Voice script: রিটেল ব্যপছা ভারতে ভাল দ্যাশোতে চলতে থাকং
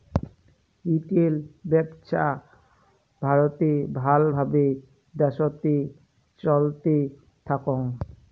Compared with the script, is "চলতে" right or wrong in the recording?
right